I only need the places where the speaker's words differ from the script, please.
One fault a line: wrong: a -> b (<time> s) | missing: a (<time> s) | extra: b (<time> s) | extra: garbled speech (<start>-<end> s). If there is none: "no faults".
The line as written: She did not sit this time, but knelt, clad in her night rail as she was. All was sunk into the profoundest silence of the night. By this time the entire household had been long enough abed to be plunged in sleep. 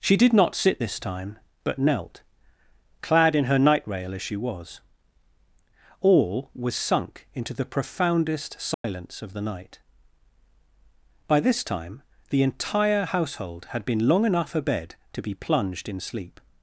no faults